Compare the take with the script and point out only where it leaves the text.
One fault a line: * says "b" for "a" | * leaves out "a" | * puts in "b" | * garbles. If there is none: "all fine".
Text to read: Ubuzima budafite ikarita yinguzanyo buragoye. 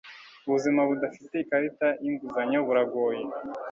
all fine